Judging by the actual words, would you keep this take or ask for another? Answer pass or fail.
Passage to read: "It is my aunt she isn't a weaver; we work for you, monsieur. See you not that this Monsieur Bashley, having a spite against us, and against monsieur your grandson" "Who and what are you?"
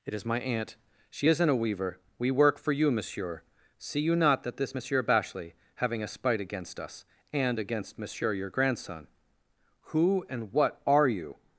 pass